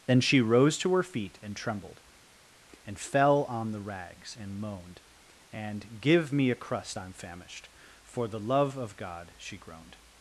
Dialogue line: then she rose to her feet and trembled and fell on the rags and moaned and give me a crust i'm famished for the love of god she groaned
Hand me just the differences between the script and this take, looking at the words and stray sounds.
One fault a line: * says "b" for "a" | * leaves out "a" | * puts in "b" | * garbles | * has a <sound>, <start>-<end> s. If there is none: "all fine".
all fine